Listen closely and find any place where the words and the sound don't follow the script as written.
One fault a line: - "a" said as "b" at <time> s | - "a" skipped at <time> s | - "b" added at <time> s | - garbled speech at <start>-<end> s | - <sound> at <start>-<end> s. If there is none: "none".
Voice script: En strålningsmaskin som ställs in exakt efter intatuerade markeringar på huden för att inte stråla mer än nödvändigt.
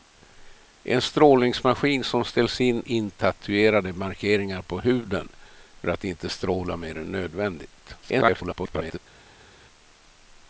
- "exakt efter" skipped at 2.8 s
- garbled speech at 8.0-9.0 s